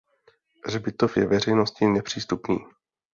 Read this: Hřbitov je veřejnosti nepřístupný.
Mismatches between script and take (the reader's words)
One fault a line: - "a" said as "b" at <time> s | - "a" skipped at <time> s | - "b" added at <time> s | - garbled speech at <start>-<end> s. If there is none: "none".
none